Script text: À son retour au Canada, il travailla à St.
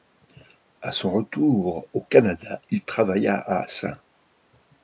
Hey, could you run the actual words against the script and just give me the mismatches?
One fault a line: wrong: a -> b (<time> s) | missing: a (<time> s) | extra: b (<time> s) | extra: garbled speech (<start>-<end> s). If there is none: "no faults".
no faults